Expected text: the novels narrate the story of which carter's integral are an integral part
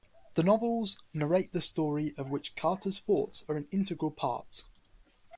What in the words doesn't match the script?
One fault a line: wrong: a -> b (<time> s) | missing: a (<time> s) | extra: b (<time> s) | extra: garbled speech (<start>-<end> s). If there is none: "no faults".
wrong: integral -> thoughts (3.0 s)